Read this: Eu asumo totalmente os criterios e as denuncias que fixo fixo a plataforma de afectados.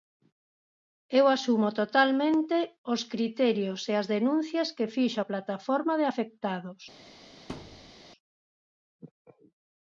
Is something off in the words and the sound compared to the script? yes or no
yes